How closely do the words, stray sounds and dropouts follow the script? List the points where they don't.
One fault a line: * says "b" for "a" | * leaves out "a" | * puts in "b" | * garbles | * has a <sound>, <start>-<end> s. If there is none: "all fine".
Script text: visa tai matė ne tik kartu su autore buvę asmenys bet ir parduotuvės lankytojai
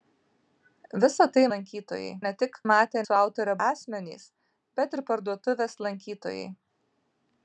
* says "lankytojai" for "matė"
* says "matė" for "kartu"
* leaves out "buvę"